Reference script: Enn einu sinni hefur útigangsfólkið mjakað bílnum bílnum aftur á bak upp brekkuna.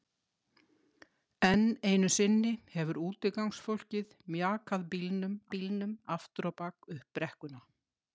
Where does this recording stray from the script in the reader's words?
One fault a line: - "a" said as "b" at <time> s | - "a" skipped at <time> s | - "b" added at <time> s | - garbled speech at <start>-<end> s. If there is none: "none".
none